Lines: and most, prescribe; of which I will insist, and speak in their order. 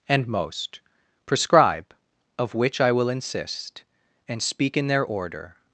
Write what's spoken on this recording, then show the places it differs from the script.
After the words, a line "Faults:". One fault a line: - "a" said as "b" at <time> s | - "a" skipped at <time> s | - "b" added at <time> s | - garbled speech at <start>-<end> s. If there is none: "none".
and most, prescribe; of which I will insist, and speak in their order.
Faults:
none